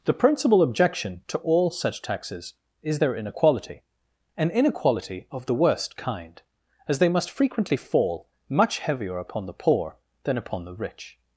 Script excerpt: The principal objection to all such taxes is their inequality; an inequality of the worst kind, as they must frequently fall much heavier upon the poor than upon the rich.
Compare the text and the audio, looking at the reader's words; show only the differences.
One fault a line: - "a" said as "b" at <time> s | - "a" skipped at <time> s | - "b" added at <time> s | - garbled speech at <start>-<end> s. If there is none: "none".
none